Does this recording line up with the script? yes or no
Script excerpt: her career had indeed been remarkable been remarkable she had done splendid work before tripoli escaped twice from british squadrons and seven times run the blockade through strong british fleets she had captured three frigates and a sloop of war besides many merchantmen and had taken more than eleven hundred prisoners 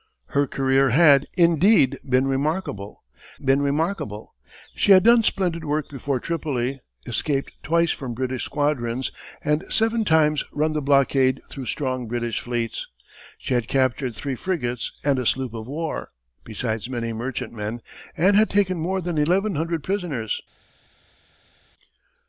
yes